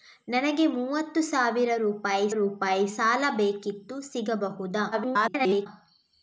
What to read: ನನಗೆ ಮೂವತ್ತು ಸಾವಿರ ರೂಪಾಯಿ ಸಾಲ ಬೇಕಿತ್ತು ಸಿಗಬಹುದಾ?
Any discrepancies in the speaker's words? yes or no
yes